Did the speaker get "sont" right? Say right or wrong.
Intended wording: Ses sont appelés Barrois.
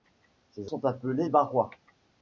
right